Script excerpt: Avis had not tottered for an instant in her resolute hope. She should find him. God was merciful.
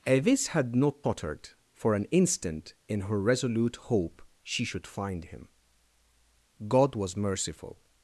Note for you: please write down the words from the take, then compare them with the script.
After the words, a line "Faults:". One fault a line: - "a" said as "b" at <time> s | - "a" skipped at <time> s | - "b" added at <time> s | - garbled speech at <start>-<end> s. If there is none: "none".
Avis had not tottered for an instant in her resolute hope. She should find him. God was merciful.
Faults:
none